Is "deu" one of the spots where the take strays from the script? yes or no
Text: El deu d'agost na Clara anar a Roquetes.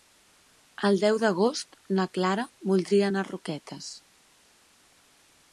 no